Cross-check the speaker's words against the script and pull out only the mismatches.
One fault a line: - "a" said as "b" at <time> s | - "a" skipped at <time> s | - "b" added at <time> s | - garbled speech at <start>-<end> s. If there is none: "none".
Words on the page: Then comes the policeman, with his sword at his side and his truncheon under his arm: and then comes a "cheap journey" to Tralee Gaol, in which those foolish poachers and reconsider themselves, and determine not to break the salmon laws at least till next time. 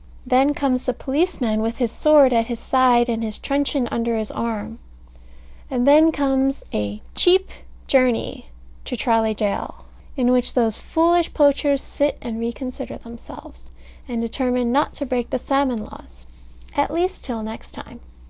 - "sit" added at 11.8 s